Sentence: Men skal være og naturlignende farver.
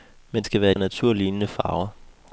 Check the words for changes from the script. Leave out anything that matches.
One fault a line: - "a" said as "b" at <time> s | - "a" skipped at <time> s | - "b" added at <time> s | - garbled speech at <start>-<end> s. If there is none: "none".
none